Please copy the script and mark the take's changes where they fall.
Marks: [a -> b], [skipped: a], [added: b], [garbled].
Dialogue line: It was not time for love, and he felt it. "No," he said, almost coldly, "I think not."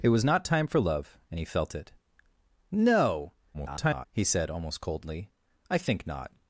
It was not time for love, and he felt it. "No," [garbled] he said, almost coldly, "I think not."